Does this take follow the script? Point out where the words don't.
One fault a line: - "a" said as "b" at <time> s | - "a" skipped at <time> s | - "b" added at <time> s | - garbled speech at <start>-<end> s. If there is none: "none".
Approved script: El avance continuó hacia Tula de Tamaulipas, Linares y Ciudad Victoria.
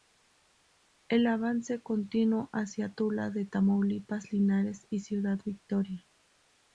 none